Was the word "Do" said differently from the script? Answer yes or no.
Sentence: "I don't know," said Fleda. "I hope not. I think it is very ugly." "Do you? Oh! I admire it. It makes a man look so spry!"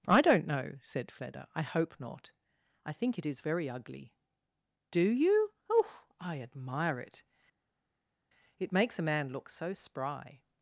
no